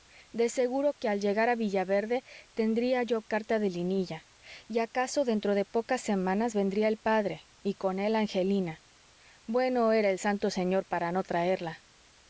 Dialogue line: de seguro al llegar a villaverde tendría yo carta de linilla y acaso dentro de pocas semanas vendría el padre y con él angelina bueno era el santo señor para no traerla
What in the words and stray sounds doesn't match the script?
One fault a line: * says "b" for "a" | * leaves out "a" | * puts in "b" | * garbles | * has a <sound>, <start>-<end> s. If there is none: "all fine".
* puts in "que"